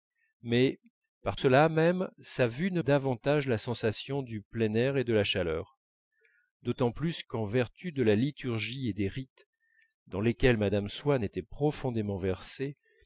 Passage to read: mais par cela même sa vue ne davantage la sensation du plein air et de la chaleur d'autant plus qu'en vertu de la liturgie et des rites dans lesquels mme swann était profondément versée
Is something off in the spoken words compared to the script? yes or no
no